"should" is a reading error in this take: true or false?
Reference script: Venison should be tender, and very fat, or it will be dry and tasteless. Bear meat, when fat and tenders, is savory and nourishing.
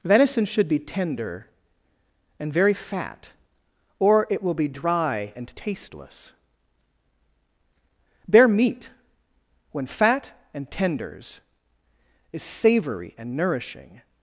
false